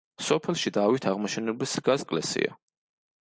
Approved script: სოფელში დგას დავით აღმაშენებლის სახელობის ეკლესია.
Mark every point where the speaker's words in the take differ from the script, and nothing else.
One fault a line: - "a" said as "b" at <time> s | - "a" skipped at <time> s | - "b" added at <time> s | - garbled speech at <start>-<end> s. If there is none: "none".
- "დგას" skipped at 0.7 s
- "სახელობის" said as "დგას" at 1.8 s